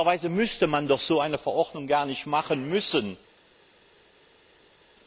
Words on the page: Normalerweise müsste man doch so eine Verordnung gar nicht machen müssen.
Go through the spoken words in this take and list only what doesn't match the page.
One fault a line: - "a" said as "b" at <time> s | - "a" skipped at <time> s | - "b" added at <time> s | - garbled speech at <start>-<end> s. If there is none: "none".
none